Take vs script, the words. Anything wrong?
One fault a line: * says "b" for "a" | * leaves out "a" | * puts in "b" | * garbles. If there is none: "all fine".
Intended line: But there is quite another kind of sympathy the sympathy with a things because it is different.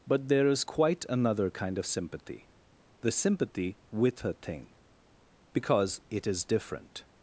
* says "thing" for "things"